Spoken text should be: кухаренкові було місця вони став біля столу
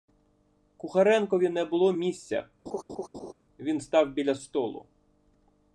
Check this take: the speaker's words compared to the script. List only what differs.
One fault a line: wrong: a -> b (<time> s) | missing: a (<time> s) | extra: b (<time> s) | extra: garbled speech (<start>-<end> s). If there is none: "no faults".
extra: не (1.5 s)
wrong: вони -> він (3.6 s)